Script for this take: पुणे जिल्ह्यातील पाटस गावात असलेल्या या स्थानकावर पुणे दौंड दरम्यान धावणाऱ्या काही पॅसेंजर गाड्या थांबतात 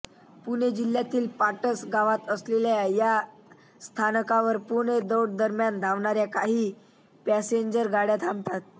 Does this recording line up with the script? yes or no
yes